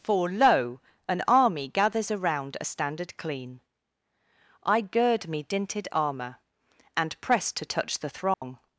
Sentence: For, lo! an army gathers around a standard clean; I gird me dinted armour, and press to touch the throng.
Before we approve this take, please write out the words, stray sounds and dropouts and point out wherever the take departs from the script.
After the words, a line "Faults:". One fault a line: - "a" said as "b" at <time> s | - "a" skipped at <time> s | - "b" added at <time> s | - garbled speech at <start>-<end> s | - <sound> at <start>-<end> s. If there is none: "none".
For, lo! an army gathers around a standard clean; I gird me dinted armour, and press to touch the throng.
Faults:
- dropout at 8.3-8.4 s